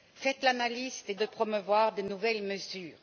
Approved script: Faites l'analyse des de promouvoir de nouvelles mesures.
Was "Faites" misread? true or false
false